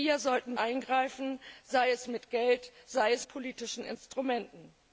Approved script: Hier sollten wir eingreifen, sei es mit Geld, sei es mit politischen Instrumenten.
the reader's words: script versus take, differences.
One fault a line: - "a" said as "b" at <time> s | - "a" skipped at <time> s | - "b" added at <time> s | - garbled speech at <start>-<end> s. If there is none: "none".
- "wir" skipped at 0.6 s
- "mit" skipped at 3.3 s